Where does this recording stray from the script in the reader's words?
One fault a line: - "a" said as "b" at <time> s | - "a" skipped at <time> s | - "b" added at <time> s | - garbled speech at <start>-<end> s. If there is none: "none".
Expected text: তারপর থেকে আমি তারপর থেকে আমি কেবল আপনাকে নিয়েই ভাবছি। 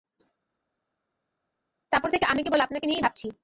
- "তারপর থেকে আমি" skipped at 2.4 s